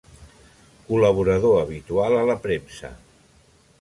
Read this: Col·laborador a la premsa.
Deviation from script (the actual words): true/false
true